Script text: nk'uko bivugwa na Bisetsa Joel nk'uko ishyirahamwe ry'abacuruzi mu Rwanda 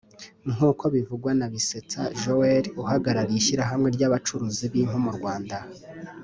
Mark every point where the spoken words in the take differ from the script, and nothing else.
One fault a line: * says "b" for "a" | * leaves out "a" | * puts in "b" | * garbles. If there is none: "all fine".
* says "uhagarariye" for "nk'uko"
* puts in "b'impu"